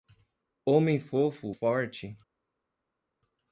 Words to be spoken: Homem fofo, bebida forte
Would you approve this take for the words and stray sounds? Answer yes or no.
no